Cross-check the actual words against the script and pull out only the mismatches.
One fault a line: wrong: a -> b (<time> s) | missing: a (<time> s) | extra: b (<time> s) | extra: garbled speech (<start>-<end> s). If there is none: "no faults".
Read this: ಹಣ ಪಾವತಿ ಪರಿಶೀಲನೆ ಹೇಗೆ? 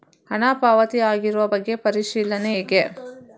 extra: ಆಗಿರುವ ಬಗ್ಗೆ (1.1 s)